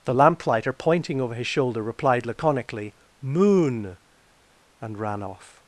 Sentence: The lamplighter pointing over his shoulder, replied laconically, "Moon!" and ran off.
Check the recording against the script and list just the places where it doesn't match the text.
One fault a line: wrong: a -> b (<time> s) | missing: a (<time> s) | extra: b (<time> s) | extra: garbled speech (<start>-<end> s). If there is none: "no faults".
no faults